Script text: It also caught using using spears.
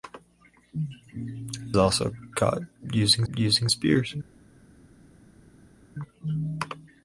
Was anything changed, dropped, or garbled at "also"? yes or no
no